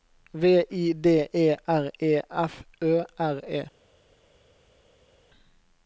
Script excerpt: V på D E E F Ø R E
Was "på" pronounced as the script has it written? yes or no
no